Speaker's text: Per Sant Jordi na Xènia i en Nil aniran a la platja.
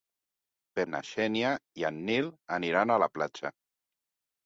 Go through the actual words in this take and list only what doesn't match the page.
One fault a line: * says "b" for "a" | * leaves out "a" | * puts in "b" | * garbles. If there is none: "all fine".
* leaves out "Sant Jordi"